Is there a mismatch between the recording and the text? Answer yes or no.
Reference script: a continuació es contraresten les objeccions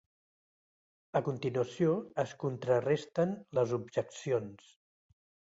no